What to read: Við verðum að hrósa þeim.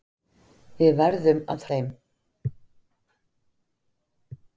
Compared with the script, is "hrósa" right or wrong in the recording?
wrong